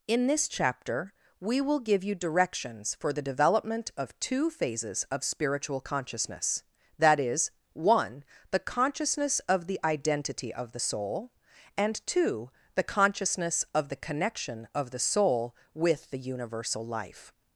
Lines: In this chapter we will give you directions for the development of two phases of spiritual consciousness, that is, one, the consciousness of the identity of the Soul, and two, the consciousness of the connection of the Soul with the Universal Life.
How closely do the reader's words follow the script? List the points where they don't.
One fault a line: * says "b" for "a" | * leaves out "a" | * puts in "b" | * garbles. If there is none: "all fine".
all fine